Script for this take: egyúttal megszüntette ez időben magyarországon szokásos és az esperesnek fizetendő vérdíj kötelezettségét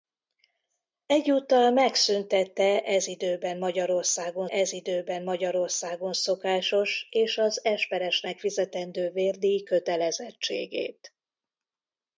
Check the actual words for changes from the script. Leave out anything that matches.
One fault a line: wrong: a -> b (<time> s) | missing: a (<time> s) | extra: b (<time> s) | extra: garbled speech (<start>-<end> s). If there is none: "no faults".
extra: ez időben magyarországon (4.5 s)